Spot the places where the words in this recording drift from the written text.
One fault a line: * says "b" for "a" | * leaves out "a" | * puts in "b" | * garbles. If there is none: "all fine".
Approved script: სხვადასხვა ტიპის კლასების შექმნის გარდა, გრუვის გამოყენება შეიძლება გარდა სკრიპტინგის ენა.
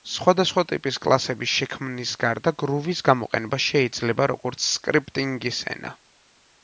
* says "როგორც" for "გარდა"